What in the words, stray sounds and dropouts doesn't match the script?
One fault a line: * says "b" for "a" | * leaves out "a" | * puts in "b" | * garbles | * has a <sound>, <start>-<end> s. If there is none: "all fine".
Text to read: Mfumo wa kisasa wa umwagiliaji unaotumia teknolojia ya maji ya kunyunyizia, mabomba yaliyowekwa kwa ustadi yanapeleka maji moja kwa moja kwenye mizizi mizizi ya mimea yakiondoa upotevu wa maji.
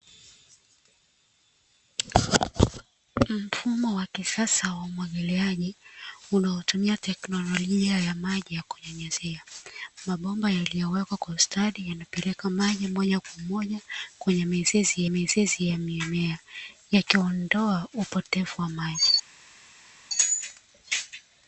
all fine